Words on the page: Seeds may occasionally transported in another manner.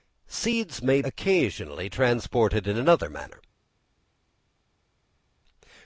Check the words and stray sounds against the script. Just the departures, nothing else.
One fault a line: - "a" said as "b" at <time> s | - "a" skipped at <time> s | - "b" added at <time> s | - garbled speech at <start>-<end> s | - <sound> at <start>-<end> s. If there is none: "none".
none